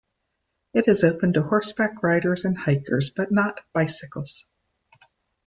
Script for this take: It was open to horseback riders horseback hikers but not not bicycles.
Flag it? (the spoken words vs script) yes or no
yes